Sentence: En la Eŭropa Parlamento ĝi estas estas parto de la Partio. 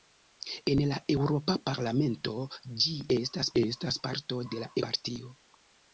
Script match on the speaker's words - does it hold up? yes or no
yes